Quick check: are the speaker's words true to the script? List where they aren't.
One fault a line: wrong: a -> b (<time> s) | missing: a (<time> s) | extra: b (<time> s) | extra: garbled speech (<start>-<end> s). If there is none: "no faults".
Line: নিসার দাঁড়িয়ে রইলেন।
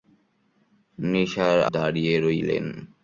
no faults